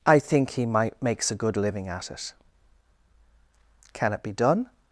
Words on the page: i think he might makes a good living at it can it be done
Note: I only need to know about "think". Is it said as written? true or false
true